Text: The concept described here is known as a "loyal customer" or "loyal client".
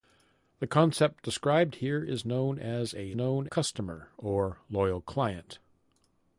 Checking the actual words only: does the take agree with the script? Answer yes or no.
no